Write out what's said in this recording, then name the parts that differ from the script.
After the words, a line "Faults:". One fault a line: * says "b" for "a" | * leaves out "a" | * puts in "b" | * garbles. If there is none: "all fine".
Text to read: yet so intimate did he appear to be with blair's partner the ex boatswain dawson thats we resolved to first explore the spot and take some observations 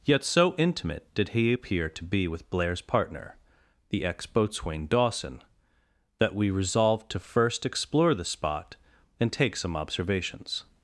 yet so intimate did he appear to be with blair's partner the ex boatswain dawson that we resolved to first explore the spot and take some observations
Faults:
* says "that" for "thats"